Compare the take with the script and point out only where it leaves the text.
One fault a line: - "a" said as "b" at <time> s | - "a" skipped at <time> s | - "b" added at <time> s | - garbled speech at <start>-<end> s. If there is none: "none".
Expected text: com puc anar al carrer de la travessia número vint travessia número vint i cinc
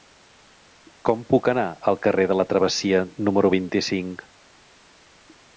- "travessia número vint" skipped at 3.7 s